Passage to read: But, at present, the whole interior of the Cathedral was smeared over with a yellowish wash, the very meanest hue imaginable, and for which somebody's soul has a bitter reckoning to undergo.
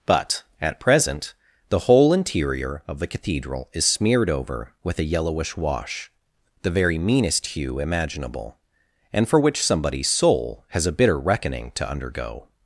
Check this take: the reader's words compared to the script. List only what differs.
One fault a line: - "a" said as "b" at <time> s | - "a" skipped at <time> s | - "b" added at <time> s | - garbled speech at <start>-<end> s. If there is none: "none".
- "was" said as "is" at 3.7 s